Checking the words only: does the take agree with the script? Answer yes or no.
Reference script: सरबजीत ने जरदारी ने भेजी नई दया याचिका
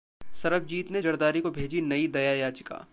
no